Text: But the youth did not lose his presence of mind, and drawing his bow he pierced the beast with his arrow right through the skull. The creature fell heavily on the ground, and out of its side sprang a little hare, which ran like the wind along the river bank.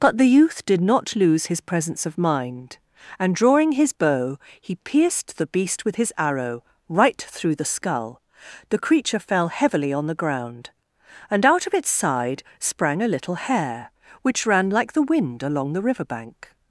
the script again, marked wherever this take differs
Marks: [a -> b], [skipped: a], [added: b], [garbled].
But the youth did not lose his presence of mind, and drawing his bow he pierced the beast with his arrow right through the skull. The creature fell heavily on the ground, and out of its side sprang a little hare, which ran like the wind along the river bank.